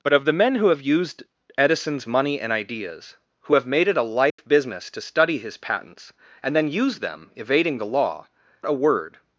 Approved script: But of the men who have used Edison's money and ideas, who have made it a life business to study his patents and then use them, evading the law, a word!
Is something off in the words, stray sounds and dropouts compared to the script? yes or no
yes